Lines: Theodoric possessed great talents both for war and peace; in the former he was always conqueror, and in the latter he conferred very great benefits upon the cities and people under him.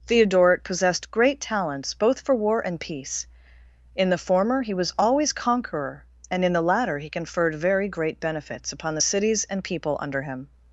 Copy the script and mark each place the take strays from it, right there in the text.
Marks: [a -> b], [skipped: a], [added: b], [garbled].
Theodoric possessed great talents both for war and peace; in the former he was always conqueror, and in the latter he conferred very great benefits upon the cities and people under him.